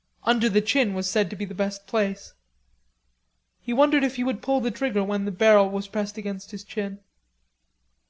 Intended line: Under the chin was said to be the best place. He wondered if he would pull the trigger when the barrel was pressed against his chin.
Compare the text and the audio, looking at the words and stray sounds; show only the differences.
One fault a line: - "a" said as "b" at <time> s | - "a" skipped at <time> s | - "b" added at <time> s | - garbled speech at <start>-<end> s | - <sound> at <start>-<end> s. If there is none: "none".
none